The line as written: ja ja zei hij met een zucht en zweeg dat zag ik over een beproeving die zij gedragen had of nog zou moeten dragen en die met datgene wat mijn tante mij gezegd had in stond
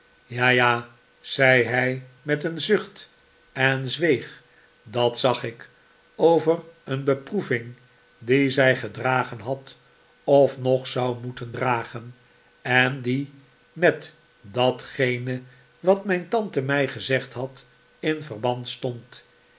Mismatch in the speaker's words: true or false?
true